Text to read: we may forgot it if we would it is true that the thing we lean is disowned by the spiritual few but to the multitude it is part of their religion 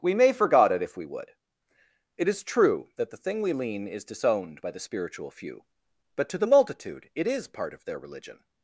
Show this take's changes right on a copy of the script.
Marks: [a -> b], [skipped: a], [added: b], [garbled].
we may forgot it if we would it is true that the thing we lean is disowned by the spiritual few but to the multitude it is part of their religion